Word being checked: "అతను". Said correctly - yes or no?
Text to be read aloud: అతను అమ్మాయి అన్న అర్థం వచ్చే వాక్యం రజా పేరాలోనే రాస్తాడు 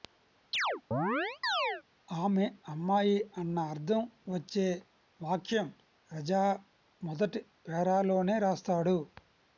no